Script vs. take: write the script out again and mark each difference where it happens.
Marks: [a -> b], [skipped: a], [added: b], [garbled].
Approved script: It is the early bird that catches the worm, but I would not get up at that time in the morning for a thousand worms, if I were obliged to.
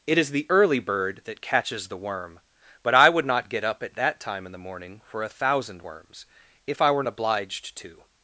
It is the early bird that catches the worm, but I would not get up at that time in the morning for a thousand worms, if I were obliged to.